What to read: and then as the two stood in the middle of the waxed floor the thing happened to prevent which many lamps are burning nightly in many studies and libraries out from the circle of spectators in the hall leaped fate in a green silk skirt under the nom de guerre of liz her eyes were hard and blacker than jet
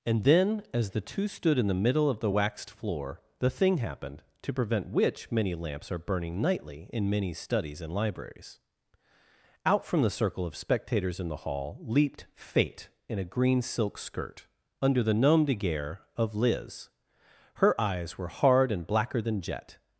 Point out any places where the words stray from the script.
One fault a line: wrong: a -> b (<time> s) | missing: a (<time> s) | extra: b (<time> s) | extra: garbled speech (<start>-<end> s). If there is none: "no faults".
no faults